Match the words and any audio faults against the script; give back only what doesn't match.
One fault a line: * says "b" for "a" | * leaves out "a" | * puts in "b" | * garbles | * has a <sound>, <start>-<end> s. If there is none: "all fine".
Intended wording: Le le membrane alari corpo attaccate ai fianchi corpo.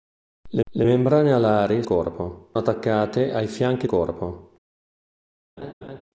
* has a laugh, 5.6-6.0 s